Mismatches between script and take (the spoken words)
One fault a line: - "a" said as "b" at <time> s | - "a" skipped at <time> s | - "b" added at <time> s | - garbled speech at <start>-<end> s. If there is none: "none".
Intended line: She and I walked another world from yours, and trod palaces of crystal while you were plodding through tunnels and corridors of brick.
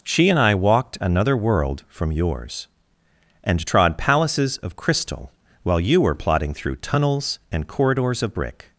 none